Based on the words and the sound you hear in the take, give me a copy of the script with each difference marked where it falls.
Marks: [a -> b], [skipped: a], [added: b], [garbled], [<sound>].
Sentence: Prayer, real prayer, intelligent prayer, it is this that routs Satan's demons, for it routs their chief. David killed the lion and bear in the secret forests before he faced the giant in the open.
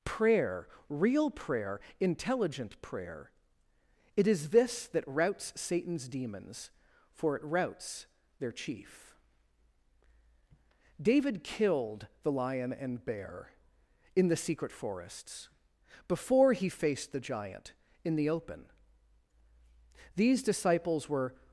Prayer, real prayer, intelligent prayer, it is this that routs Satan's demons, for it routs their chief. David killed the lion and bear in the secret forests before he faced the giant in the open. [added: These disciples were]